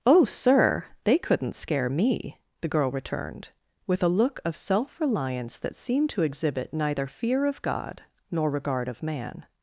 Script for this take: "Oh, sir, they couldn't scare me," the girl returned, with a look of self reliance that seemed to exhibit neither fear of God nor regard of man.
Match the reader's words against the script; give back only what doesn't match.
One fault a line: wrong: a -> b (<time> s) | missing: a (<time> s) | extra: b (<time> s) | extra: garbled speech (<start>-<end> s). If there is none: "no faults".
no faults